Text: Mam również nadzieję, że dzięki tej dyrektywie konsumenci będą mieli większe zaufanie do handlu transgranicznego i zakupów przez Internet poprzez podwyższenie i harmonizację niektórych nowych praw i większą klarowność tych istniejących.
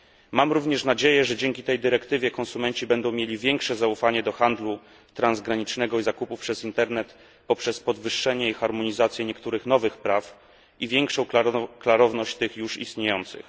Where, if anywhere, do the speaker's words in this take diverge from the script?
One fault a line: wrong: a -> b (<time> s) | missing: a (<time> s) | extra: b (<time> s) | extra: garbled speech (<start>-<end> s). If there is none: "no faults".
extra: już (12.6 s)